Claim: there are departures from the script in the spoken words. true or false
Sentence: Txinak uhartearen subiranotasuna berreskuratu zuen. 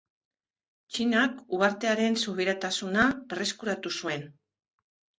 false